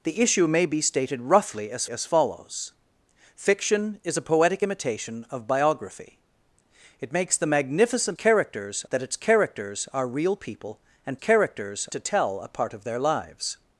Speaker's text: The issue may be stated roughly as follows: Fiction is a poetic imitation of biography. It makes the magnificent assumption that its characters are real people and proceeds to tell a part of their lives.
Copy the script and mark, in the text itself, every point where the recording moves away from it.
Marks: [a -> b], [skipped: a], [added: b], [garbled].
The issue may be stated roughly as [added: as] follows: Fiction is a poetic imitation of biography. It makes the magnificent [assumption -> characters] that its characters are real people and [proceeds -> characters] to tell a part of their lives.